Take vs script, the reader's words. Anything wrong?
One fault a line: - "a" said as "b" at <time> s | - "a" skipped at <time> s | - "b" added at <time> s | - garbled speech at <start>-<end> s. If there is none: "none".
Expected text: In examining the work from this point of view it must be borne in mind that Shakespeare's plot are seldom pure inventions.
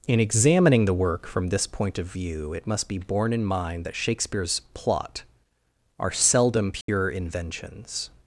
none